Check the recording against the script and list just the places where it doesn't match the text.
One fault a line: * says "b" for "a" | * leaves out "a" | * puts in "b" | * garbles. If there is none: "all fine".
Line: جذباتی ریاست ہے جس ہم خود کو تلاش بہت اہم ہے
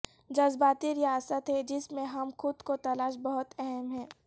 * puts in "میں"